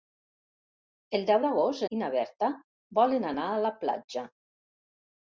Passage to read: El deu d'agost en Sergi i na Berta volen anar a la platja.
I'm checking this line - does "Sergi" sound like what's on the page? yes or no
no